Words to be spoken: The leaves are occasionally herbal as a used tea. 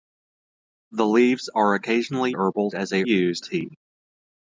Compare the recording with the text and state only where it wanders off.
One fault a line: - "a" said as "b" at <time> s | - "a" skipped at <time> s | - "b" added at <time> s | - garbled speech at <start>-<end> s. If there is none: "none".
none